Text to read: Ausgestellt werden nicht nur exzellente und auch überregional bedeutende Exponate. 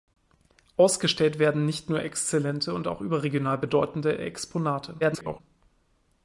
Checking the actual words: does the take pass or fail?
fail